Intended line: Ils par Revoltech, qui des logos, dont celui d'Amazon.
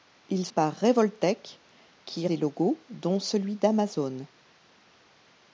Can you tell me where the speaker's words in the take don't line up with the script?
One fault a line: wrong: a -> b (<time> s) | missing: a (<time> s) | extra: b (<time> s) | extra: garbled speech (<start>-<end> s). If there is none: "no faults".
no faults